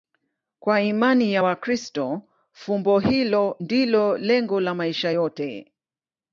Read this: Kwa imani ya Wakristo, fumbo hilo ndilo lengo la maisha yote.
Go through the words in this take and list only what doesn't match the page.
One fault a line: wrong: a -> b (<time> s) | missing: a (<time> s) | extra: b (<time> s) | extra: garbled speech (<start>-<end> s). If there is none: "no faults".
no faults